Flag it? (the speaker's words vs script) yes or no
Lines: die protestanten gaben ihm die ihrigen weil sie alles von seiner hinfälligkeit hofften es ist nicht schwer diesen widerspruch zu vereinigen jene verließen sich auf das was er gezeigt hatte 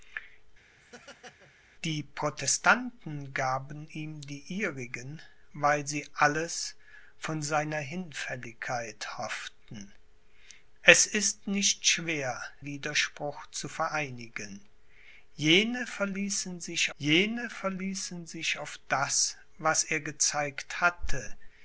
yes